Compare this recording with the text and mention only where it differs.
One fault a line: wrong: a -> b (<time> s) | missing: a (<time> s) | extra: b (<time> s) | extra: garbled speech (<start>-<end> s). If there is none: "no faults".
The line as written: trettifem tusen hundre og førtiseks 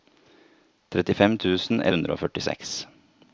no faults